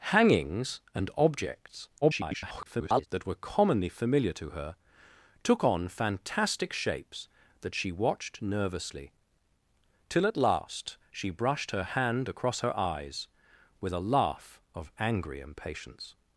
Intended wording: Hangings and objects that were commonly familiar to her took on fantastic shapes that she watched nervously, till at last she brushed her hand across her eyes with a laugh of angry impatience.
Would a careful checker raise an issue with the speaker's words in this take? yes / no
yes